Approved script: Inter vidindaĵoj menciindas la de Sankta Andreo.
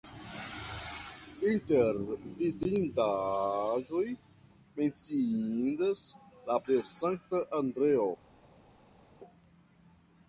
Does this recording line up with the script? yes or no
yes